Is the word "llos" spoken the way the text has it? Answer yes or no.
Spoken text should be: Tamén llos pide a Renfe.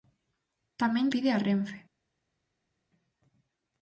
no